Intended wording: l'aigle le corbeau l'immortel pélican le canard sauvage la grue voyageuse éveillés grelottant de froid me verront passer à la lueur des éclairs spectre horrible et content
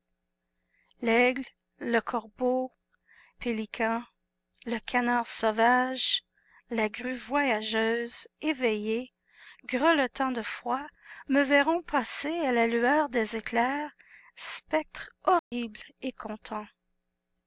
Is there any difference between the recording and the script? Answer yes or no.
yes